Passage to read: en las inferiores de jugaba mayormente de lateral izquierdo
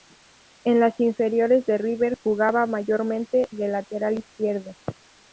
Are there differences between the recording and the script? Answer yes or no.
yes